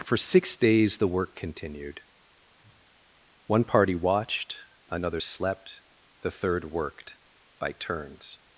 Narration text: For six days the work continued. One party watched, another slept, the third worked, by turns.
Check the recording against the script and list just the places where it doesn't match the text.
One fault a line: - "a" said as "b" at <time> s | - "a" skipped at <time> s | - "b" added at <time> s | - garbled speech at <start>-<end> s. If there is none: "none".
none